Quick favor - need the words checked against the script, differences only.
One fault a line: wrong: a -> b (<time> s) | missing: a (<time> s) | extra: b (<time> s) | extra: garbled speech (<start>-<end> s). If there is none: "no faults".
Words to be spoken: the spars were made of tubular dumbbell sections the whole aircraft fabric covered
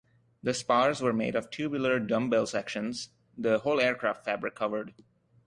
no faults